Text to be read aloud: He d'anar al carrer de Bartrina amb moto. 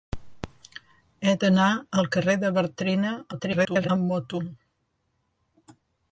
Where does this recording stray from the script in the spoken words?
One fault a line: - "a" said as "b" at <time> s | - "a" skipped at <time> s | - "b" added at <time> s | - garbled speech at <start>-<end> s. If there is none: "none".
- garbled speech at 3.3-3.9 s